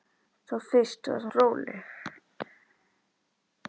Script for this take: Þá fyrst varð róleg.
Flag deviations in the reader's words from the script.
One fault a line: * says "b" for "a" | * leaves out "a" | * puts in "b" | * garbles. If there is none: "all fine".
all fine